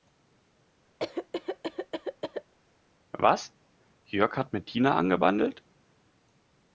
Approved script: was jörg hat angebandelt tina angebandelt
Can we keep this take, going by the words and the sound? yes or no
no